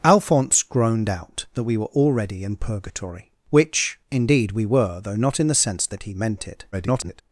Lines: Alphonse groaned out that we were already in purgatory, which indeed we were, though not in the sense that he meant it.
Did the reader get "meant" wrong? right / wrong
right